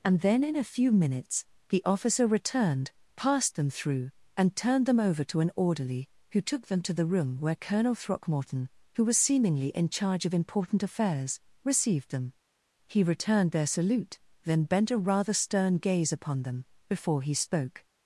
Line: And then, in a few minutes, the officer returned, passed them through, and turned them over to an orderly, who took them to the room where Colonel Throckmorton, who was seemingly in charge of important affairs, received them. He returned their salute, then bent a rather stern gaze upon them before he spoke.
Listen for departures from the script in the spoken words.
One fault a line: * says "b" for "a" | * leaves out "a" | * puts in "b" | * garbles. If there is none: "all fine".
all fine